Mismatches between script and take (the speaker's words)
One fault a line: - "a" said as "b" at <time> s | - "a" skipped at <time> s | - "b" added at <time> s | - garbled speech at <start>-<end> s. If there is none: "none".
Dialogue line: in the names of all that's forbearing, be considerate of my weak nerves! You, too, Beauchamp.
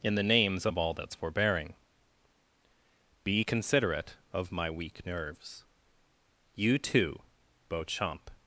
none